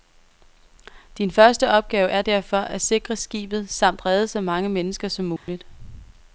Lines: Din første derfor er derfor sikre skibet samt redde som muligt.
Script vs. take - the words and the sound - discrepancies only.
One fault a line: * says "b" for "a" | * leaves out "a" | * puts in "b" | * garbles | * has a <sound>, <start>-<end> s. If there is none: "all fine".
* says "opgave" for "derfor"
* puts in "at"
* puts in "så mange mennesker"
* has a dropout, 5.4-5.5 s